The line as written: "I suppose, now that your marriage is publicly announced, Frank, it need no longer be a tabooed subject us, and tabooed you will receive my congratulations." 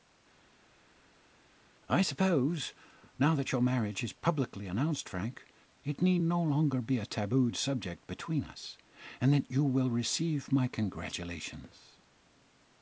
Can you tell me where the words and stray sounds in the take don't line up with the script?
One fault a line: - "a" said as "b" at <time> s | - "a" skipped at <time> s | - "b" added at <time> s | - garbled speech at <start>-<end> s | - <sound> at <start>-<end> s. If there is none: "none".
- "between" added at 8.1 s
- "tabooed" said as "that" at 9.3 s